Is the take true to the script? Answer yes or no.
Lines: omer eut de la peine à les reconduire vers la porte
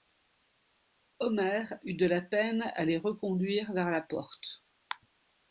yes